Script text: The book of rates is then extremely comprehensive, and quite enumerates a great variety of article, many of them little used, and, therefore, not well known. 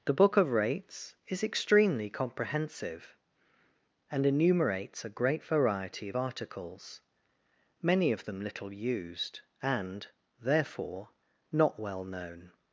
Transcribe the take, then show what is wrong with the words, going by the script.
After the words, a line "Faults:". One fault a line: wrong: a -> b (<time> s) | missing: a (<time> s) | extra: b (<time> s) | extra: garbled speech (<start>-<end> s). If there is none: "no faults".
The book of rates is extremely comprehensive, and enumerates a great variety of articles, many of them little used, and, therefore, not well known.
Faults:
missing: then (1.4 s)
missing: quite (4.2 s)
wrong: article -> articles (6.1 s)